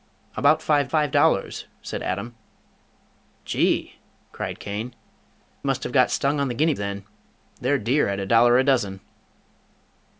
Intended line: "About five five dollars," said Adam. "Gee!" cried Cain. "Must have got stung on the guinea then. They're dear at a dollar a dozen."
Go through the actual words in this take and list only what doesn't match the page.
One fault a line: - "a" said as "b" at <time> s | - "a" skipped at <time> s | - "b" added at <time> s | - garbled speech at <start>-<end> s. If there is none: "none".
none